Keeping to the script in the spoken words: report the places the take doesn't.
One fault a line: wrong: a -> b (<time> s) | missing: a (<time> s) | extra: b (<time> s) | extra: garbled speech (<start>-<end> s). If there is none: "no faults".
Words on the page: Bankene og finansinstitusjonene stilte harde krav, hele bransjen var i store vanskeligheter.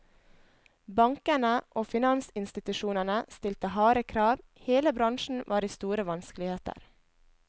no faults